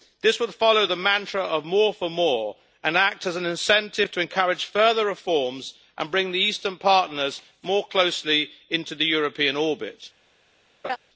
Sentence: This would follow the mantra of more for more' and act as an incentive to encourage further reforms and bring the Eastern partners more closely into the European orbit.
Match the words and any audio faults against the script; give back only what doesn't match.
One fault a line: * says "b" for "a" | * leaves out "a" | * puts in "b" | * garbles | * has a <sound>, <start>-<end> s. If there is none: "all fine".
* has a laugh, 10.8-11.0 s